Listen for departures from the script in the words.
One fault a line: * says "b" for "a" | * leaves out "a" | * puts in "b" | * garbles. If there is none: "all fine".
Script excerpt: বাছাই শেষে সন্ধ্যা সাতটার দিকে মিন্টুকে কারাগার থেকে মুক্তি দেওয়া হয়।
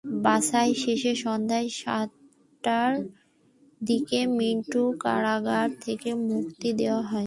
all fine